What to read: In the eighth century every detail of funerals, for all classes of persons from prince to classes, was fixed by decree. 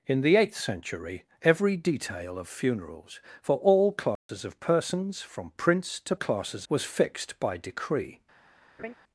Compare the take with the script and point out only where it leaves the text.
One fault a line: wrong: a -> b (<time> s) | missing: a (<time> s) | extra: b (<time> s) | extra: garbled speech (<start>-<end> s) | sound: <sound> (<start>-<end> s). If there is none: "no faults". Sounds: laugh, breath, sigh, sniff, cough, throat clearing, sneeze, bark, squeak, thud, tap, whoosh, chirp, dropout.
sound: dropout (4.2-4.3 s)
sound: laugh (8.8-9.0 s)